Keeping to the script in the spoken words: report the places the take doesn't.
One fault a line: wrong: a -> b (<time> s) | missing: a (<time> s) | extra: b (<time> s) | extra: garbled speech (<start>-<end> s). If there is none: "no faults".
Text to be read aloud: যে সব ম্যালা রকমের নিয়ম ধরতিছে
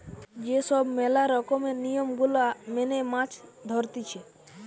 extra: গুলা মেনে মাছ (2.2 s)